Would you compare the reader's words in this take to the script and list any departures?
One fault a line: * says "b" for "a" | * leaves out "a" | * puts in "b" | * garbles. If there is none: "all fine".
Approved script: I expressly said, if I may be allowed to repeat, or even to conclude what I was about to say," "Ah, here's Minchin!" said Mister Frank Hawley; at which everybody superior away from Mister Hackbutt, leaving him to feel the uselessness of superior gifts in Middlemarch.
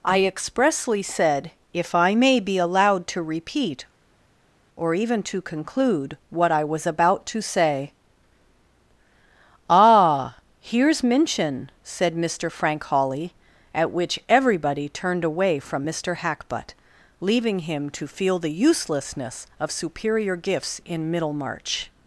* says "turned" for "superior"